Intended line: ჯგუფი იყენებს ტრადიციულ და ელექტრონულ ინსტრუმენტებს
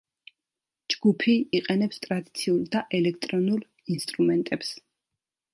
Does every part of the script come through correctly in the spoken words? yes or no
yes